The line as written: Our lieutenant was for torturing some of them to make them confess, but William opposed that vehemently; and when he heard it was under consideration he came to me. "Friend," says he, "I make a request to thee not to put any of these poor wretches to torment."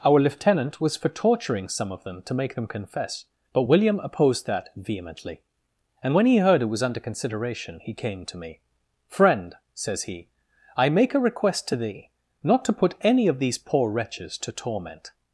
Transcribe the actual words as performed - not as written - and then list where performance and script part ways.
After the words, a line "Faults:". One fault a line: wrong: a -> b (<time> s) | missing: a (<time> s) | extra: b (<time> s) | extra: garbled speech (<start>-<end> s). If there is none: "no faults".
Our lieutenant was for torturing some of them to make them confess, but William opposed that vehemently; and when he heard it was under consideration he came to me. "Friend," says he, "I make a request to thee not to put any of these poor wretches to torment."
Faults:
no faults